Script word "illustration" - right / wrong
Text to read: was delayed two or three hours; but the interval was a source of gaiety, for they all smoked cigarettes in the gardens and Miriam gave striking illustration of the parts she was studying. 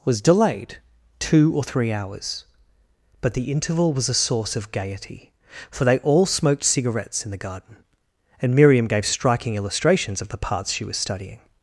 wrong